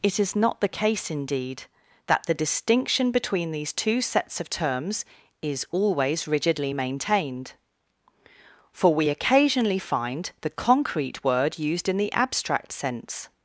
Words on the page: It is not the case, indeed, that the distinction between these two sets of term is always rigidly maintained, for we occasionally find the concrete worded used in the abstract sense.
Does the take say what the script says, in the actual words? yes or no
no